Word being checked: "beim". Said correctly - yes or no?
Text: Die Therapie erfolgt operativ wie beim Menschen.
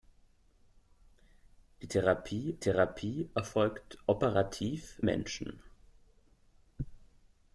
no